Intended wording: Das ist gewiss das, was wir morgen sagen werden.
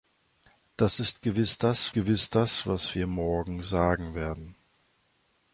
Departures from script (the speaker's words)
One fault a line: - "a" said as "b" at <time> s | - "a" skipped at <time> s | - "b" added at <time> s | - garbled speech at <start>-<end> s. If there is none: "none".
- "gewiss das" added at 1.9 s